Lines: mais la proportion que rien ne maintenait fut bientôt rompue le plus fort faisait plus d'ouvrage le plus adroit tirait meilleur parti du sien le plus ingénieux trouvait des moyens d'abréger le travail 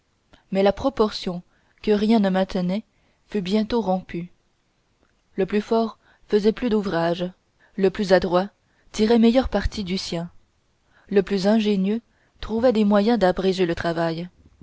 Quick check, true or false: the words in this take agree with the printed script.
true